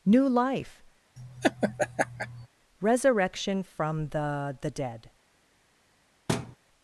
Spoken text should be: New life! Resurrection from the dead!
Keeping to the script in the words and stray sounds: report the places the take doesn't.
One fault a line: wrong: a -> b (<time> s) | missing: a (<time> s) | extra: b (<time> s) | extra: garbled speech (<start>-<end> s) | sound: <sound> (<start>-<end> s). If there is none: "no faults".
sound: laugh (1.2-2.5 s)
extra: the (4.6 s)
sound: thud (6.3-6.6 s)